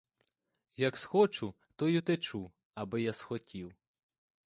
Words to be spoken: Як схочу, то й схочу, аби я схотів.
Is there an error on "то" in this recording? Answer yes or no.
no